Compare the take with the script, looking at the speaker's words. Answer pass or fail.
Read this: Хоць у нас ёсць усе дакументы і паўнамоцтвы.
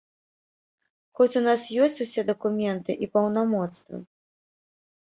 pass